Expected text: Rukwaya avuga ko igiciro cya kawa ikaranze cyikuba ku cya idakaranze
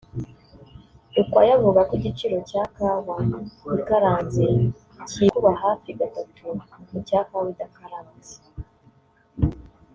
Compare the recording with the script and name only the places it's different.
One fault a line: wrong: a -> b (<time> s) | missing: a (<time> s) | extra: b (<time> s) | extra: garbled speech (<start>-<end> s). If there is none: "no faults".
extra: hafi gatatu (5.6 s)
extra: kawa (7.3 s)